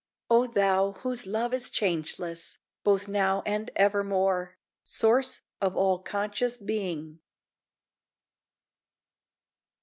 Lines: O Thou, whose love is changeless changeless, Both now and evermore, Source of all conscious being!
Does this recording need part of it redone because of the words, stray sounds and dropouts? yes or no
yes